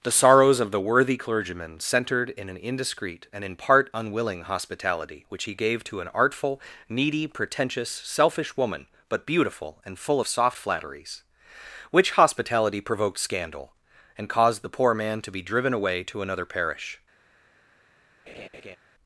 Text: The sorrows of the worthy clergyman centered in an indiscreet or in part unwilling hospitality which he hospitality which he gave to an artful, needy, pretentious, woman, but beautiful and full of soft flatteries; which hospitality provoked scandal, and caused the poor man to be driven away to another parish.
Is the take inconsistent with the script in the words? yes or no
yes